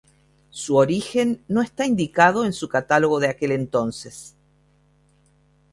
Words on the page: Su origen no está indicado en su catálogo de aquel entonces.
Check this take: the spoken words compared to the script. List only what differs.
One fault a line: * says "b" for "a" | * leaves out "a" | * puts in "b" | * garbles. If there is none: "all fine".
all fine